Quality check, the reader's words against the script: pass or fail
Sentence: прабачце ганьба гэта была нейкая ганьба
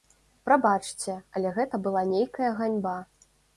fail